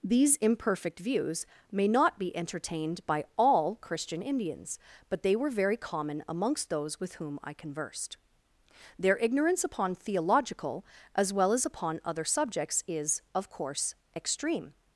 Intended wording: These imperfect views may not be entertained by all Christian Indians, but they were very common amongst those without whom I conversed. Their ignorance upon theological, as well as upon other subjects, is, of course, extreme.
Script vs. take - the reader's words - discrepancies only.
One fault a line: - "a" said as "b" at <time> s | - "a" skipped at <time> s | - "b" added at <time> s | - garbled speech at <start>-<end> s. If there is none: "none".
- "without" said as "with" at 7.0 s